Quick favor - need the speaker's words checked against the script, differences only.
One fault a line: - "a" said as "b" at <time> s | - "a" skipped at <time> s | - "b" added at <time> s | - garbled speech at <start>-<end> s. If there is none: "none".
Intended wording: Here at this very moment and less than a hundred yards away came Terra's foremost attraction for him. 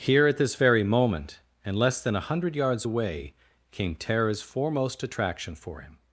none